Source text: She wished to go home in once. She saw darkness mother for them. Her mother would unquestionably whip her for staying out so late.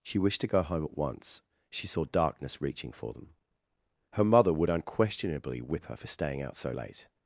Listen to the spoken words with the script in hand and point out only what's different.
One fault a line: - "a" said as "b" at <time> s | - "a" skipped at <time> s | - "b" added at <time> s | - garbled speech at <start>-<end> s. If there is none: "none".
- "in" said as "at" at 0.8 s
- "mother" said as "reaching" at 2.6 s